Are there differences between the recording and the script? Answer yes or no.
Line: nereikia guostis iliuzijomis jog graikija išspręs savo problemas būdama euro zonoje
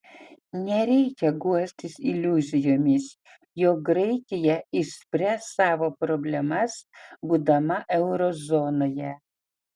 no